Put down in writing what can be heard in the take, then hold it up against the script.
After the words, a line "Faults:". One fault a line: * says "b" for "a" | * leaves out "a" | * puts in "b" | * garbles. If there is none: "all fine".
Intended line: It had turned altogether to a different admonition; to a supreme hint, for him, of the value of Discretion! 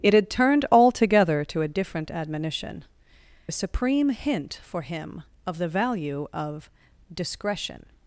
It had turned altogether to a different admonition; a supreme hint, for him, of the value of Discretion!
Faults:
* leaves out "to"